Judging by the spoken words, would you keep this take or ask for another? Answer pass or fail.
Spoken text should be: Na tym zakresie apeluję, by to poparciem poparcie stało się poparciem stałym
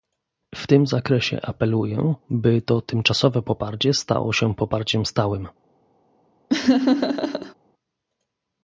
fail